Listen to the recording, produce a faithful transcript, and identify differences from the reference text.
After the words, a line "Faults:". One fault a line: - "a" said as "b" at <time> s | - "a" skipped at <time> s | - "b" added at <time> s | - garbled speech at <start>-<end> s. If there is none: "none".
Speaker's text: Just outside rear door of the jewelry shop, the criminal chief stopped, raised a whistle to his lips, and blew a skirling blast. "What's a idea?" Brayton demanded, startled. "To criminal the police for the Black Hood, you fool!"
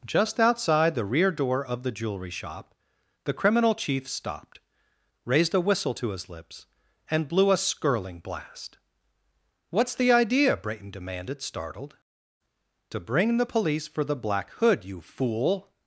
Just outside the rear door of the jewelry shop, the criminal chief stopped, raised a whistle to his lips, and blew a skirling blast. "What's the idea?" Brayton demanded, startled. "To bring the police for the Black Hood, you fool!"
Faults:
- "the" added at 0.9 s
- "a" said as "the" at 9.9 s
- "criminal" said as "bring" at 13.0 s